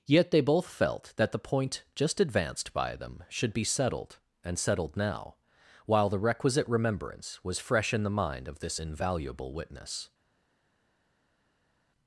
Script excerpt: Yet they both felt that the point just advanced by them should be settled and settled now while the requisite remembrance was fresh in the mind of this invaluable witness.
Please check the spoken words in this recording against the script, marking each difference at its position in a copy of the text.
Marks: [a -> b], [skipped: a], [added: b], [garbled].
Yet they both felt that the point just advanced by them should be settled and settled now while the requisite remembrance was fresh in the mind of this invaluable witness.